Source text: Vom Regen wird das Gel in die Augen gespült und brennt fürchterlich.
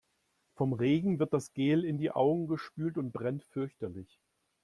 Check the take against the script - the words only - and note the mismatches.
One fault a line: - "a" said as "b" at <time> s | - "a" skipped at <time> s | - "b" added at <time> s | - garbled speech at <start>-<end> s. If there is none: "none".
none